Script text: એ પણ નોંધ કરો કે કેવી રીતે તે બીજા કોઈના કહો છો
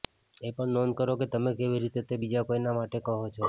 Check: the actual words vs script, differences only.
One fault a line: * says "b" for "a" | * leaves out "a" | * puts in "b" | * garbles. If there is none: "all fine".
* puts in "તમે"
* puts in "માટે"